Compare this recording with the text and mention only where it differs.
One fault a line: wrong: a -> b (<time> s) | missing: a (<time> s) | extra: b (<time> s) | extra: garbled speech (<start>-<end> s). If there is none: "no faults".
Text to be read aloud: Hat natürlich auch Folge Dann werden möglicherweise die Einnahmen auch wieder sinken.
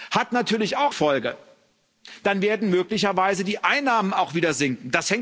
no faults